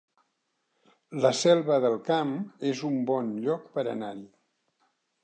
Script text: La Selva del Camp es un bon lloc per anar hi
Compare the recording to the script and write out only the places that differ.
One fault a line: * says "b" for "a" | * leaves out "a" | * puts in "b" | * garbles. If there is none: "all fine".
all fine